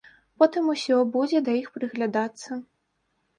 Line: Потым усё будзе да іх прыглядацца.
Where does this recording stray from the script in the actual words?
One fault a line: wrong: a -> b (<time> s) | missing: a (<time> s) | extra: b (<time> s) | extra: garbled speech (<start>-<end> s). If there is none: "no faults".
no faults